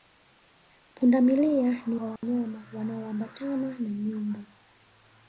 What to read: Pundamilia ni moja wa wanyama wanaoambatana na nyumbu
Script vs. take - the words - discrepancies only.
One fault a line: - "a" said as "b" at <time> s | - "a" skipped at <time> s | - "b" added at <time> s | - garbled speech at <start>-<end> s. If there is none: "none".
- "moja" skipped at 1.9 s